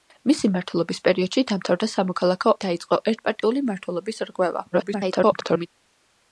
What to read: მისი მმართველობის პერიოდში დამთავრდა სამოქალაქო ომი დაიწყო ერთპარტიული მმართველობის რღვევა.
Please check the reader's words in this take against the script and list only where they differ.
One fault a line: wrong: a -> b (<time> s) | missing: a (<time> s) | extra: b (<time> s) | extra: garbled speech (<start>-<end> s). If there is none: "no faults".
missing: ომი (2.5 s)
extra: garbled speech (4.7-5.7 s)